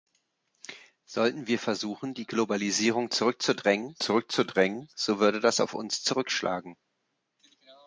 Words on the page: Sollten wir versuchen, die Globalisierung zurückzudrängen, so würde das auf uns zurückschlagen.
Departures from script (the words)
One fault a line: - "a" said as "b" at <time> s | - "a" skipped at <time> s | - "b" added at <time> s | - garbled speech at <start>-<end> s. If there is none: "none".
- "zurückzudrängen" added at 4.0 s